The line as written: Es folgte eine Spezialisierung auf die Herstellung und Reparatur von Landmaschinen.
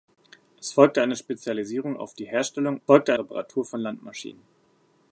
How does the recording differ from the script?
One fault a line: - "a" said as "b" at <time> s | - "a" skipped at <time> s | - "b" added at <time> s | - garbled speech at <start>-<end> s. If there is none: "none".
- "und" said as "folgte" at 2.8 s